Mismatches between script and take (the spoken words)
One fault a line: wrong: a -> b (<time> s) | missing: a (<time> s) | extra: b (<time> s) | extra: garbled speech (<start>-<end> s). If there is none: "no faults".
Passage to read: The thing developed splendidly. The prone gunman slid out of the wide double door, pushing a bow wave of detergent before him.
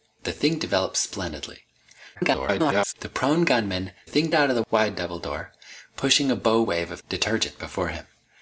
extra: garbled speech (2.1-2.9 s)
wrong: slid -> thing (4.0 s)